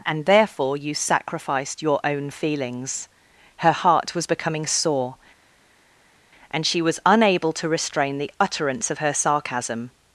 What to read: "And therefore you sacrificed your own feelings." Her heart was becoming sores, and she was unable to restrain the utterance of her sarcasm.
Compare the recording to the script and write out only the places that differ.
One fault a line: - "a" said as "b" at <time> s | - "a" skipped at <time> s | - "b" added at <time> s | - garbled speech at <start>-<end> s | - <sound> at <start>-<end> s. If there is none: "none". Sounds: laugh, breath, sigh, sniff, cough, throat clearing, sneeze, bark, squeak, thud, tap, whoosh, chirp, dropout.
- "sores" said as "sore" at 4.6 s